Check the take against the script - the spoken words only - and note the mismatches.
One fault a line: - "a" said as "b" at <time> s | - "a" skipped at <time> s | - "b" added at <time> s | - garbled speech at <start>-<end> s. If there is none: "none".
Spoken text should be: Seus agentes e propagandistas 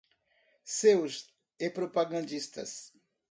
- "agentes" skipped at 1.4 s